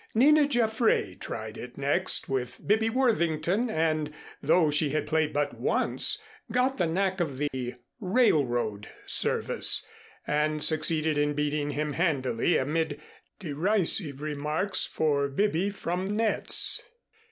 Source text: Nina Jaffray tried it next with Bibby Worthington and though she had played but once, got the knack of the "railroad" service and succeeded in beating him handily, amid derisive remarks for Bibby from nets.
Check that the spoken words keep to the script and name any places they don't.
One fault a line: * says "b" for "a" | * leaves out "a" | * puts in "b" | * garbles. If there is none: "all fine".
all fine